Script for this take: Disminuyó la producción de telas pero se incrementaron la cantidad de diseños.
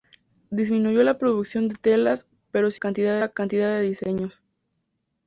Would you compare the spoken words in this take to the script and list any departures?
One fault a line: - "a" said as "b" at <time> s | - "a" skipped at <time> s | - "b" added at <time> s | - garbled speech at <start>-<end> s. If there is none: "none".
- "incrementaron" said as "cantidad" at 2.7 s